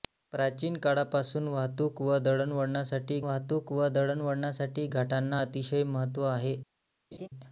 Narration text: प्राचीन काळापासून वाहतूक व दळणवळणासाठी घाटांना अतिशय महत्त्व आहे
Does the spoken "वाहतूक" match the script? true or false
true